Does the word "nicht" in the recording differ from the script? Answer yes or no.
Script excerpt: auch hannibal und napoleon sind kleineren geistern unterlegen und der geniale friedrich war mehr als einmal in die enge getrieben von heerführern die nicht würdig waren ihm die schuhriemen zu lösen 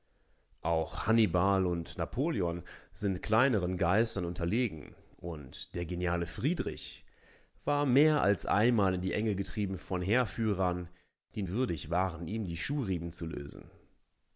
yes